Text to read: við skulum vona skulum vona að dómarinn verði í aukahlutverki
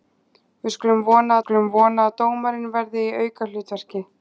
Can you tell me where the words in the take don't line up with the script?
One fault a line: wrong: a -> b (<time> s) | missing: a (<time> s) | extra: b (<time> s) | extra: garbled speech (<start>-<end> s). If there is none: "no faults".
no faults